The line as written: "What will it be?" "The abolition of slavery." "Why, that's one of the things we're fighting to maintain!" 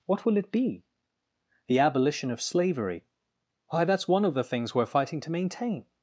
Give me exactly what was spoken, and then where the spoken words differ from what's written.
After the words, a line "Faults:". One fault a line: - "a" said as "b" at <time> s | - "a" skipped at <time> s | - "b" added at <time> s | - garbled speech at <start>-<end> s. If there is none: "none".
"What will it be?" "The abolition of slavery." "Why, that's one of the things we're fighting to maintain!"
Faults:
none